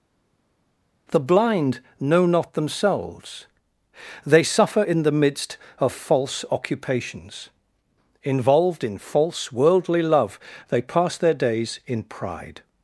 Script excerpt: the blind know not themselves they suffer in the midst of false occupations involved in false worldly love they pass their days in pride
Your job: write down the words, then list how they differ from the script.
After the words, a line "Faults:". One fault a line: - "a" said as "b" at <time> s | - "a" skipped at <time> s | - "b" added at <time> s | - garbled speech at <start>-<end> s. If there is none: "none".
the blind know not themselves they suffer in the midst of false occupations involved in false worldly love they pass their days in pride
Faults:
none